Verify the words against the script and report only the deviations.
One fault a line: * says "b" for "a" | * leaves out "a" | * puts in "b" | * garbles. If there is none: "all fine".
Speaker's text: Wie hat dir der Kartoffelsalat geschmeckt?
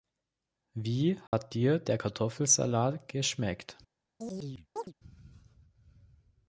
all fine